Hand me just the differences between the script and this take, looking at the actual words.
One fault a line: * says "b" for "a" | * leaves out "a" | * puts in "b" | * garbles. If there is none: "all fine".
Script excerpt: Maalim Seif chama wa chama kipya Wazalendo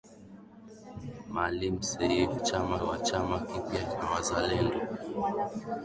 all fine